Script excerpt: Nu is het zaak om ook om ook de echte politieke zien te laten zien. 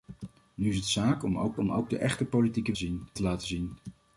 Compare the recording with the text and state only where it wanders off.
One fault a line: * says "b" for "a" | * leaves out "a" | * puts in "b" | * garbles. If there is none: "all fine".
all fine